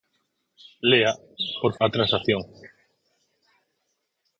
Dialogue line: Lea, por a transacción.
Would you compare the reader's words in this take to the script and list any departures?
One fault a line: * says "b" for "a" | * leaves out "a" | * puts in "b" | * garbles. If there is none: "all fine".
all fine